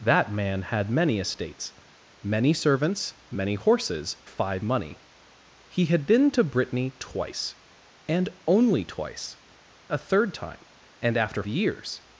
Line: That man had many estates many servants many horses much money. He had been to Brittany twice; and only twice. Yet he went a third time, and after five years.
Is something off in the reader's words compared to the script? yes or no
yes